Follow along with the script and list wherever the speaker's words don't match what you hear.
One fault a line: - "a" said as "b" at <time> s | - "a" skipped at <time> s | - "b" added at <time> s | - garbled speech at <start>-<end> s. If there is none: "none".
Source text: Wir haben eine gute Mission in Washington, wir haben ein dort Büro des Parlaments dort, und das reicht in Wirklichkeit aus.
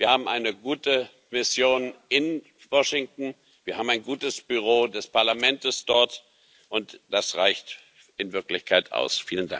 - "dort" said as "gutes" at 4.0 s